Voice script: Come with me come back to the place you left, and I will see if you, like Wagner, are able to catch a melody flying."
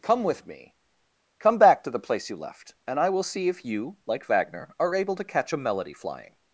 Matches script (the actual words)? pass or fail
pass